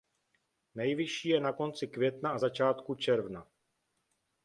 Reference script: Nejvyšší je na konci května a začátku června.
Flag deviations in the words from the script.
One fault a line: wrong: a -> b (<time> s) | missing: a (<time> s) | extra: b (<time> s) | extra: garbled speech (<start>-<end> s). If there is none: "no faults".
no faults